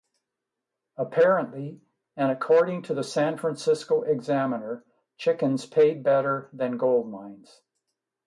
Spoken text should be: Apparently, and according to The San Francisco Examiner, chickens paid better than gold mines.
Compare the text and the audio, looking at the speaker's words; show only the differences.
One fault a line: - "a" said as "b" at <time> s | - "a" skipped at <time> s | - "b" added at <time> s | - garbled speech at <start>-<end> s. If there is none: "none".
none